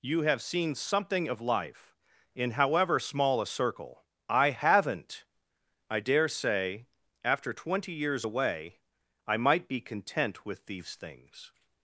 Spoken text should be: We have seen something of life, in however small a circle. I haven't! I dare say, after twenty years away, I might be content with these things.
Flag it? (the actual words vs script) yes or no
yes